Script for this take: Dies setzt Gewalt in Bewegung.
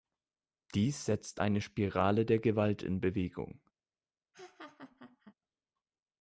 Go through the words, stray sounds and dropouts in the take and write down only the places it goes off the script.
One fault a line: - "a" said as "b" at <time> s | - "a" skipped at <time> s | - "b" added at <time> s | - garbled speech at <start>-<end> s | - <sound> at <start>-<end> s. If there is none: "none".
- "eine Spirale der" added at 1.4 s
- laugh at 4.3-5.3 s